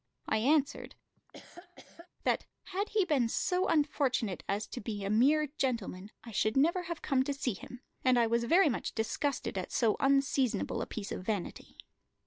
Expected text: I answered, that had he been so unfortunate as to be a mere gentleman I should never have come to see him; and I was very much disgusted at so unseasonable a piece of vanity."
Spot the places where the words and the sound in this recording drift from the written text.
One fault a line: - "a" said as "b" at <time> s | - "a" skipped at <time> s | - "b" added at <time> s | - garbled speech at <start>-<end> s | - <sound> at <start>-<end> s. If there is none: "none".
- laugh at 1.2-2.1 s